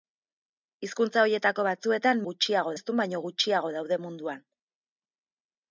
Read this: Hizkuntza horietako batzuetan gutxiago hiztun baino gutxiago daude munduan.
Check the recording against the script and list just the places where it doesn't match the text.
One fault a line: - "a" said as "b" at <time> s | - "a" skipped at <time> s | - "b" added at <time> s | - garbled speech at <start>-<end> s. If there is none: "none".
none